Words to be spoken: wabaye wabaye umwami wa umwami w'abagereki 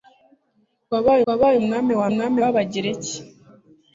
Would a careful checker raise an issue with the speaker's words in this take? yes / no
no